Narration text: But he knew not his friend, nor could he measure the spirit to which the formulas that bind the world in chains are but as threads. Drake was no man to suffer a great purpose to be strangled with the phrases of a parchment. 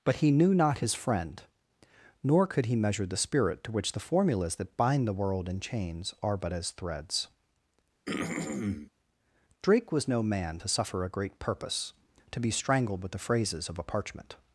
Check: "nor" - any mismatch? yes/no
no